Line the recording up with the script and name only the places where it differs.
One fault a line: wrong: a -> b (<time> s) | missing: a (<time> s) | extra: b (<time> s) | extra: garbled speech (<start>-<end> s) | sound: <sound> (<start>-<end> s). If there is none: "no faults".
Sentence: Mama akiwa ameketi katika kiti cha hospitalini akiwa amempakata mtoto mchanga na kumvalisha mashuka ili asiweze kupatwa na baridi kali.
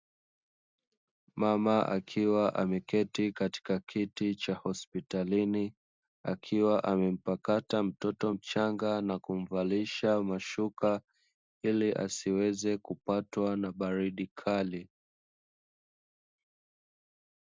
no faults